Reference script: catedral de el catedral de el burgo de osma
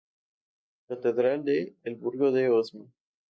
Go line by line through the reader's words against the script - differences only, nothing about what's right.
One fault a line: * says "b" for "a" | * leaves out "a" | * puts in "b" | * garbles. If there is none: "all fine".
* leaves out "catedral de el"